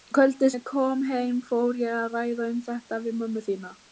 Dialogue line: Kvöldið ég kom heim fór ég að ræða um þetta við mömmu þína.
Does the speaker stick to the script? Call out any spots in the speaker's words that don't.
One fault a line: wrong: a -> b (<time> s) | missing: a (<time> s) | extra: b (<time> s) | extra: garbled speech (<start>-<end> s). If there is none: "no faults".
no faults